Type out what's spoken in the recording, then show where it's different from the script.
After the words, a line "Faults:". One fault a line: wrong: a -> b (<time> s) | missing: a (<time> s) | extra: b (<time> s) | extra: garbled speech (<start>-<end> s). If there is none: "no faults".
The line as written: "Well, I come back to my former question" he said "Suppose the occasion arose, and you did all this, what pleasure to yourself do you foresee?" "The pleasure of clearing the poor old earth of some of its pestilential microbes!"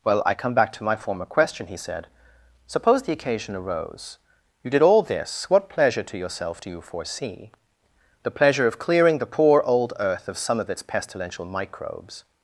"Well, I come back to my former question" he said "Suppose the occasion arose, you did all this, what pleasure to yourself do you foresee?" "The pleasure of clearing the poor old earth of some of its pestilential microbes!"
Faults:
missing: and (4.2 s)